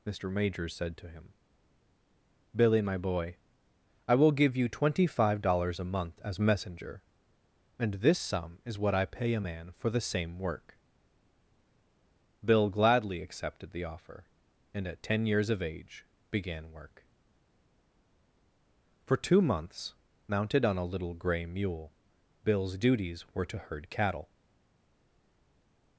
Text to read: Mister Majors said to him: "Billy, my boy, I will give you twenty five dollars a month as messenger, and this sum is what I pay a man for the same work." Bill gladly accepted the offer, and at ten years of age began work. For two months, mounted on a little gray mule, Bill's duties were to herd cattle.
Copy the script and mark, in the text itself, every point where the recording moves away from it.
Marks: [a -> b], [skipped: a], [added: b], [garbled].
Mister Majors said to him: "Billy, my boy, I will give you twenty five dollars a month as messenger, and this sum is what I pay a man for the same work." Bill gladly accepted the offer, and at ten years of age began work. For two months, mounted on a little gray mule, Bill's duties were to herd cattle.